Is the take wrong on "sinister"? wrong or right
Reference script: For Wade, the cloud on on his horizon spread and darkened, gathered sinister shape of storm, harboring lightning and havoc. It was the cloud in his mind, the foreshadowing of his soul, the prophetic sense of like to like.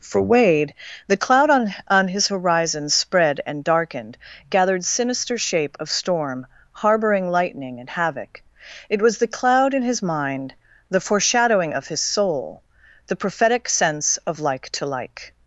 right